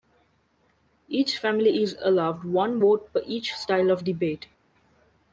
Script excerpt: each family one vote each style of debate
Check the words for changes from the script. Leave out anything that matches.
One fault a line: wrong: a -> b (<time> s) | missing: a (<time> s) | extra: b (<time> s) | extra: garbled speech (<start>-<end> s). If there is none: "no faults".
extra: is allowed (1.8 s)
extra: per (3.1 s)